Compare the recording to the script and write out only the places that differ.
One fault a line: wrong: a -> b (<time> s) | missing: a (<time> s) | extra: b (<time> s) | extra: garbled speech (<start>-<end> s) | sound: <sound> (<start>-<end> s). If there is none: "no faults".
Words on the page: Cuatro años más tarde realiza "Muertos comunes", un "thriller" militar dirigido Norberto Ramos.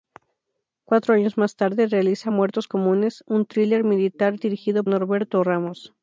no faults